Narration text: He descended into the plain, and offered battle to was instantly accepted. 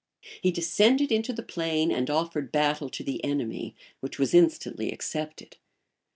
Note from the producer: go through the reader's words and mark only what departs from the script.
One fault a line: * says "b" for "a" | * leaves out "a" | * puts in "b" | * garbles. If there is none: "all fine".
* puts in "the enemy which"